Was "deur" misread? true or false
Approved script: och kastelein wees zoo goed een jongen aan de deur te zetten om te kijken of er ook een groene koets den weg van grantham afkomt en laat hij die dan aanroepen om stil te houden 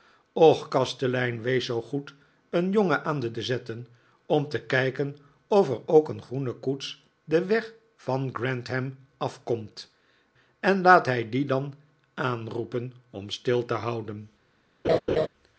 true